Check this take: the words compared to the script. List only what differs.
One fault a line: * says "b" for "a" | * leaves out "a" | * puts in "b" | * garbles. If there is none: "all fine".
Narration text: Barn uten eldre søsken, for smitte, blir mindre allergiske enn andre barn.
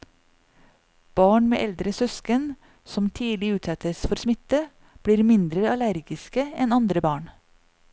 * says "med" for "uten"
* puts in "som tidlig utsettes"